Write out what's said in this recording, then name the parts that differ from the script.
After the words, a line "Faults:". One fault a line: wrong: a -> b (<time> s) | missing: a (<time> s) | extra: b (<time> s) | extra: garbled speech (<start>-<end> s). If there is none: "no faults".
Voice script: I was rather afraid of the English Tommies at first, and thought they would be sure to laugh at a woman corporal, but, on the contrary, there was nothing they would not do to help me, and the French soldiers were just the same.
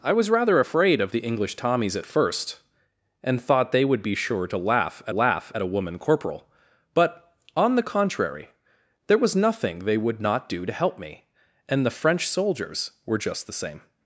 I was rather afraid of the English Tommies at first, and thought they would be sure to laugh at laugh at a woman corporal, but, on the contrary, there was nothing they would not do to help me, and the French soldiers were just the same.
Faults:
extra: laugh at (5.1 s)